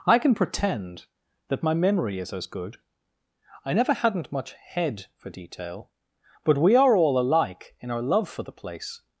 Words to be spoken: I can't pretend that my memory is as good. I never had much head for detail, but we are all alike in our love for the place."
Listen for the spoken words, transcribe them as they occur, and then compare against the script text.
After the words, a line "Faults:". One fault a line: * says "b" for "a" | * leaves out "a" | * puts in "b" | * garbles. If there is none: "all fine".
I can pretend that my memory is as good. I never hadn't much head for detail, but we are all alike in our love for the place."
Faults:
* says "can" for "can't"
* says "hadn't" for "had"